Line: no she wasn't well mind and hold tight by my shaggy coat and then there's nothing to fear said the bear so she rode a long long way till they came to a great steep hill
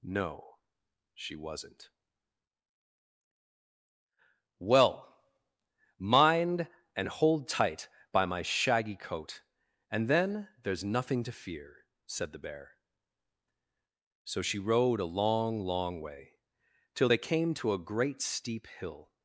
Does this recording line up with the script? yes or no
yes